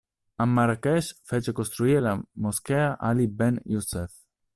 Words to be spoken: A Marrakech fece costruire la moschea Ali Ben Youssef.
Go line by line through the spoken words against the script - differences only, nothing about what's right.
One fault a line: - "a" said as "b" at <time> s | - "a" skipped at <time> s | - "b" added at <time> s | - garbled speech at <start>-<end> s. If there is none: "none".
none